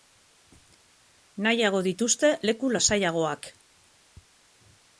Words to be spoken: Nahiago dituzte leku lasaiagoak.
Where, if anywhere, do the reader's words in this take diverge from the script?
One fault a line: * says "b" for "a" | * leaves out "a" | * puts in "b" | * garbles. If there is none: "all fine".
all fine